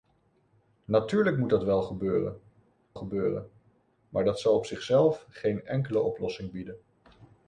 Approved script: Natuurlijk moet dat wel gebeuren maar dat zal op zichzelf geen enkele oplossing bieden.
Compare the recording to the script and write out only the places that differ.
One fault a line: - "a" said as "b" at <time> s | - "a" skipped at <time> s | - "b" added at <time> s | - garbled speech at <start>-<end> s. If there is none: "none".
- "gebeuren" added at 2.9 s